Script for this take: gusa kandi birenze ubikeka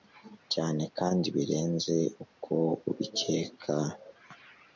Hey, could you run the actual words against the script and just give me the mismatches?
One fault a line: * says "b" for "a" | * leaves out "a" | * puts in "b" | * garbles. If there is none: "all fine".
* says "cyane" for "gusa"
* puts in "uko"